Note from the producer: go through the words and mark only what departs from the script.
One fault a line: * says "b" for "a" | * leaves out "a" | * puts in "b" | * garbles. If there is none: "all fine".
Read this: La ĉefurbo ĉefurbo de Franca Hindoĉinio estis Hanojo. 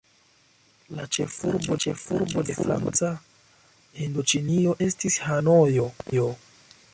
all fine